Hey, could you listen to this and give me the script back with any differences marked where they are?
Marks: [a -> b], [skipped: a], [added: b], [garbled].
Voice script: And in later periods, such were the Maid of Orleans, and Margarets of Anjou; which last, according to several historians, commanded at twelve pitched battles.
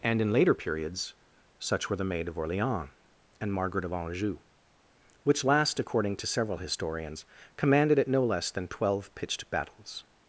And in later periods, such were the Maid of Orleans, and [Margarets -> Margaret] of Anjou; which last, according to several historians, commanded at [added: no less than] twelve pitched battles.